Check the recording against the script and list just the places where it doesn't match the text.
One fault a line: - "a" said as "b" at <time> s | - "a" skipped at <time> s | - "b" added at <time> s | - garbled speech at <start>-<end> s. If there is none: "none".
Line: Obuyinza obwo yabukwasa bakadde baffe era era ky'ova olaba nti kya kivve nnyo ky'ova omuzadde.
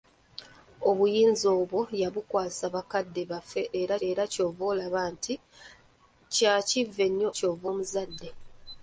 none